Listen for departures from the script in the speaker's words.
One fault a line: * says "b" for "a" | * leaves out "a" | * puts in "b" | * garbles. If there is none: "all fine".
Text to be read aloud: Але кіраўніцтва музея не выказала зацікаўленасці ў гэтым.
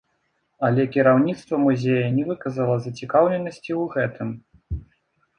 all fine